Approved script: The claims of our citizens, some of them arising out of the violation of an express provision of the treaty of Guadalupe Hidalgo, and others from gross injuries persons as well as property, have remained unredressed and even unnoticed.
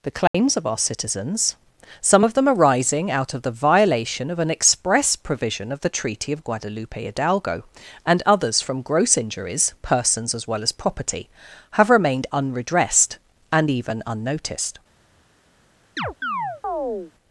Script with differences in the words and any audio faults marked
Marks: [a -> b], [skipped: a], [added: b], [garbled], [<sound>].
The claims [dropout] of our citizens, some of them arising out of the violation of an express provision of the treaty of Guadalupe Hidalgo, and others from gross injuries persons as well as property, have remained unredressed and even unnoticed. [chirp]